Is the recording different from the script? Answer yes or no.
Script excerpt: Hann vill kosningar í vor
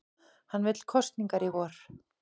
no